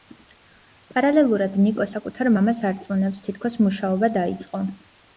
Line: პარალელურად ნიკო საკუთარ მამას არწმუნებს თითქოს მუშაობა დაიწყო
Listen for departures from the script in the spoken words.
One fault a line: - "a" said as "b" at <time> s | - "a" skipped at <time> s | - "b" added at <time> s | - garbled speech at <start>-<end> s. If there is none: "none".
none